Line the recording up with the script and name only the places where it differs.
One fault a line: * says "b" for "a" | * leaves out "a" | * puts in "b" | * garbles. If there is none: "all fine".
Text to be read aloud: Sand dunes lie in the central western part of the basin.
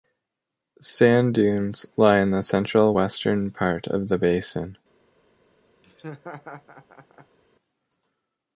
all fine